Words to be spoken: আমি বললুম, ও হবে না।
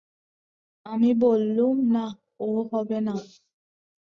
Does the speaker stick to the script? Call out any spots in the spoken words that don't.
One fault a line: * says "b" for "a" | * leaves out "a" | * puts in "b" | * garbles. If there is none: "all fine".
* puts in "না"